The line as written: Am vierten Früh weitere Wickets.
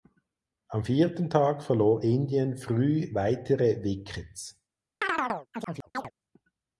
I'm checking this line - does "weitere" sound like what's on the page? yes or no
yes